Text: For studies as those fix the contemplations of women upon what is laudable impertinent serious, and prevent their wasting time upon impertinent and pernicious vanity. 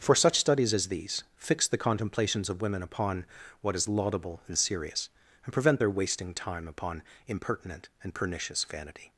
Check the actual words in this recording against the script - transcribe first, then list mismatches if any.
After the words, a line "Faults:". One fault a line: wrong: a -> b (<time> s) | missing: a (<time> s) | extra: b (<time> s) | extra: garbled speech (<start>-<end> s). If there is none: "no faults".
For such studies as these fix the contemplations of women upon what is laudable and serious, and prevent their wasting time upon impertinent and pernicious vanity.
Faults:
extra: such (0.1 s)
wrong: those -> these (0.9 s)
wrong: impertinent -> and (4.5 s)